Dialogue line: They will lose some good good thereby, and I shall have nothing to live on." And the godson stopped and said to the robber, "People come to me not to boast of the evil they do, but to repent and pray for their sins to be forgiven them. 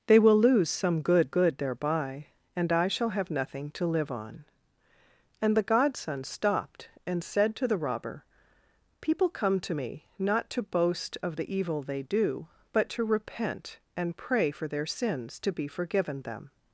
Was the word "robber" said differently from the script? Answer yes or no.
no